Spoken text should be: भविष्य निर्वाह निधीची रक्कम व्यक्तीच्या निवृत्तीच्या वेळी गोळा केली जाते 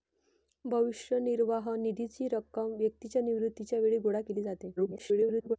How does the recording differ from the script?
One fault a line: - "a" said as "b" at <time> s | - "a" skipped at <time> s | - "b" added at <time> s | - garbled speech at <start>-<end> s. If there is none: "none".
- garbled speech at 4.8-5.6 s